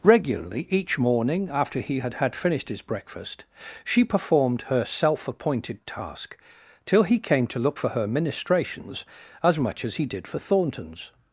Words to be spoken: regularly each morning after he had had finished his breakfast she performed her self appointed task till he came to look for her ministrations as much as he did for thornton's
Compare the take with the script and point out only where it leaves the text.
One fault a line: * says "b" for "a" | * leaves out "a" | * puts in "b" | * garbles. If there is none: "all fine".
all fine